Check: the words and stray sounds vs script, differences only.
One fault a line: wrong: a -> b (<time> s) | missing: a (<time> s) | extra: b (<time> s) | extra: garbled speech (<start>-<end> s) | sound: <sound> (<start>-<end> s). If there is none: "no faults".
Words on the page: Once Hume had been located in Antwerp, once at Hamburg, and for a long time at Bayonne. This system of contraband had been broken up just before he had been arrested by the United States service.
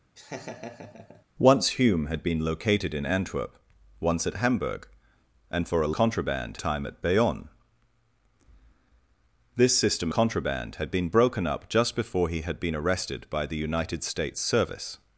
sound: laugh (0.2-1.2 s)
wrong: long -> contraband (5.9 s)
missing: of (10.1 s)